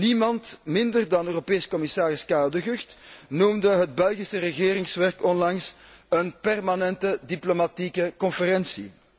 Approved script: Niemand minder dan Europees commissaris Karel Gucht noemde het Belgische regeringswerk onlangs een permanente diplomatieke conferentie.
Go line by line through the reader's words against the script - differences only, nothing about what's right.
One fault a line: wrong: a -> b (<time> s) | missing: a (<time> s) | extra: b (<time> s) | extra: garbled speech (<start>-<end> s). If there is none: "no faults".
extra: De (2.5 s)